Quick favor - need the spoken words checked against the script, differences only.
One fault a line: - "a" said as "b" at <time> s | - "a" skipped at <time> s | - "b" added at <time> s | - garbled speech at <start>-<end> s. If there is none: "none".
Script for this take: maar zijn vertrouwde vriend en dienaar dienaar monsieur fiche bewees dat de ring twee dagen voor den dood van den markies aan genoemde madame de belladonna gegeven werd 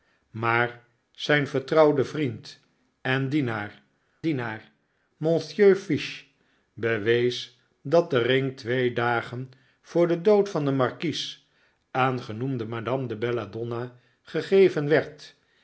none